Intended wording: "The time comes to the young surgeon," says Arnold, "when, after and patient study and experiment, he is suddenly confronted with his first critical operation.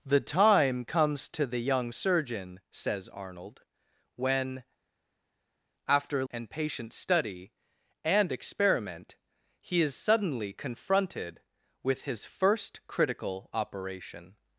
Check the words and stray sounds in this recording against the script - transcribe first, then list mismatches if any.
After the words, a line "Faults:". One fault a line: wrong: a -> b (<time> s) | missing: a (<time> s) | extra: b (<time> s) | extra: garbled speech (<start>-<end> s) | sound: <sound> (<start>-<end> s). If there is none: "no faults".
"The time comes to the young surgeon," says Arnold, "when, after and patient study and experiment, he is suddenly confronted with his first critical operation.
Faults:
no faults